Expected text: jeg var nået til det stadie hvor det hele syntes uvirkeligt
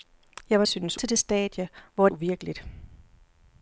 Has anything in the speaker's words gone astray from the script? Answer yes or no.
yes